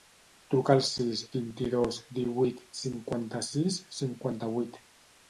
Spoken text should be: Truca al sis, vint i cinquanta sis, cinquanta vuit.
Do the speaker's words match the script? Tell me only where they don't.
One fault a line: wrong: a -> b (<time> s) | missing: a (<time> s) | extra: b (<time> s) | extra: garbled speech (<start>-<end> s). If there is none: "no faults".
extra: dos divuit (1.7 s)